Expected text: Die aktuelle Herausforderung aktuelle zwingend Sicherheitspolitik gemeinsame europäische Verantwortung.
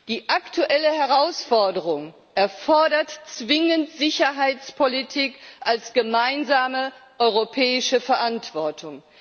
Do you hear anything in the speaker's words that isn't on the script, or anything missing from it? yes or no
yes